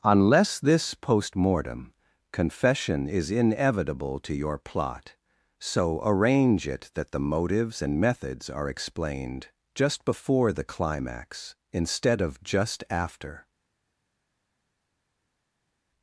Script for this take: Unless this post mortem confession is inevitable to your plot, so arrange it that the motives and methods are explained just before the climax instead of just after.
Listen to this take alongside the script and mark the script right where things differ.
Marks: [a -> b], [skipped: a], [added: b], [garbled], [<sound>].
Unless this post mortem confession is inevitable to your plot, so arrange it that the motives and methods are explained just before the climax instead of just after.